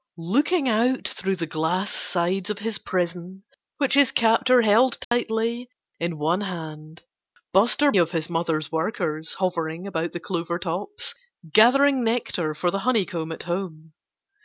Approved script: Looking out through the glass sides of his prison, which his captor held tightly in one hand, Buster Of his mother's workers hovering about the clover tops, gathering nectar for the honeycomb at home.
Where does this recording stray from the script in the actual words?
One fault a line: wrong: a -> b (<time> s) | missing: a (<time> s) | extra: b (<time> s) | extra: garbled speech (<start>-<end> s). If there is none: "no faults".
no faults